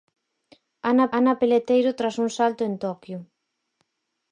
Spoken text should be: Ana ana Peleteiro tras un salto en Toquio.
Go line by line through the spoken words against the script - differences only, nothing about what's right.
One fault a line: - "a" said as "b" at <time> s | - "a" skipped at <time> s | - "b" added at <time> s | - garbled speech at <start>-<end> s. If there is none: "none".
none